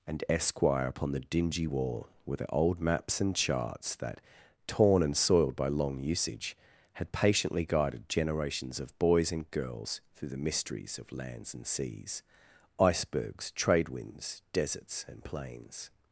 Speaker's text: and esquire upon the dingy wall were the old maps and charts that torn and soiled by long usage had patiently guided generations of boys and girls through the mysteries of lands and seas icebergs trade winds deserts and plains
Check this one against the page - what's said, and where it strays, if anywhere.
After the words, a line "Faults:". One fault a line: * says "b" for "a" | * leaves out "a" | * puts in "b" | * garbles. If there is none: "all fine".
and esquire upon the dingy wall were the old maps and charts that torn and soiled by long usage had patiently guided generations of boys and girls through the mysteries of lands and seas icebergs trade winds deserts and plains
Faults:
all fine